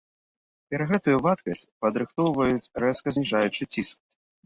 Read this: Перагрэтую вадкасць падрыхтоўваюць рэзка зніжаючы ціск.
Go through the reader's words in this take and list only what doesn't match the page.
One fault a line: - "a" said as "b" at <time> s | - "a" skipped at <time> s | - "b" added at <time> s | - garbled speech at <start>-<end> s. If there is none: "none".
none